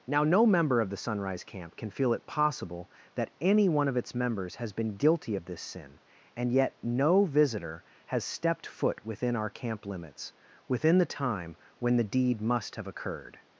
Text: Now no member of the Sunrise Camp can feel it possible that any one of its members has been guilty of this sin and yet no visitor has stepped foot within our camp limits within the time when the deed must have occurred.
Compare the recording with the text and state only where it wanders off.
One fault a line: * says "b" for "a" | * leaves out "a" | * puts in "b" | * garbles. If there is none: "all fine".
all fine